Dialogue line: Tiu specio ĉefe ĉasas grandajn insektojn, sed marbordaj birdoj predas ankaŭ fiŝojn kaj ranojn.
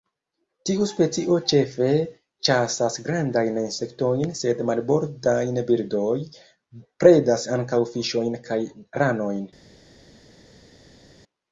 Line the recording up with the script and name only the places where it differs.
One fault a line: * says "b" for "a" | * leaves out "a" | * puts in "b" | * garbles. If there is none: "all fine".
all fine